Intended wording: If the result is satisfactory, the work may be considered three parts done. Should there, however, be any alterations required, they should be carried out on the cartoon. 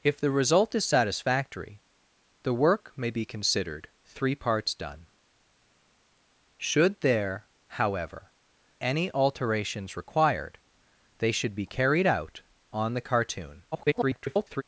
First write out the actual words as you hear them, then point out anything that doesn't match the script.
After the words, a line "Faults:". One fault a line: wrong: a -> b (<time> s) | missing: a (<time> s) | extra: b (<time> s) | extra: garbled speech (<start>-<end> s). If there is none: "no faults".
If the result is satisfactory, the work may be considered three parts done. Should there, however, any alterations required, they should be carried out on the cartoon. [garbled]
Faults:
missing: be (8.3 s)
extra: garbled speech (13.7-14.6 s)